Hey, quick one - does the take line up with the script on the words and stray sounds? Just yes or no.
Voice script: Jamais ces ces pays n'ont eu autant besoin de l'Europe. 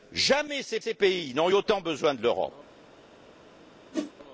no